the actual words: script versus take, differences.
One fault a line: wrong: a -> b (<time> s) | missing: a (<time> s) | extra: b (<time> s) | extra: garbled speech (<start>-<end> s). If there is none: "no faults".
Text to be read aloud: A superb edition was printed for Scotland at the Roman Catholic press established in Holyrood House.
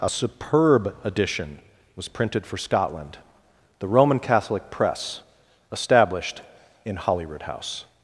missing: at (3.2 s)